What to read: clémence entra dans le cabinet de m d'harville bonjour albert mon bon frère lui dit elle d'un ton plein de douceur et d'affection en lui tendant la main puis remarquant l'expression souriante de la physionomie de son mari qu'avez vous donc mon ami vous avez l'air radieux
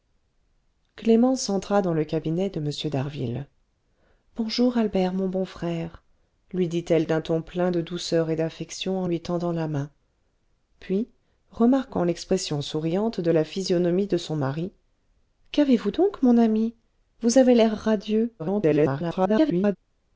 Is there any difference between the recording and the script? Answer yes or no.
yes